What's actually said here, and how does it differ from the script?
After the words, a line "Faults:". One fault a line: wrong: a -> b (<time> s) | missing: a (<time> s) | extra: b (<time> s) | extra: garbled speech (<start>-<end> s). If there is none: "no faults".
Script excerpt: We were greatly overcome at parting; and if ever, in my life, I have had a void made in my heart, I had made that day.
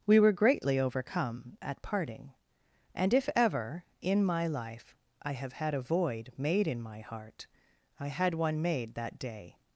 We were greatly overcome at parting; and if ever, in my life, I have had a void made in my heart, I had one made that day.
Faults:
extra: one (8.3 s)